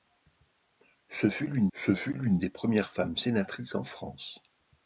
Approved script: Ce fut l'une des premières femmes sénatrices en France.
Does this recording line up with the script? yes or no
no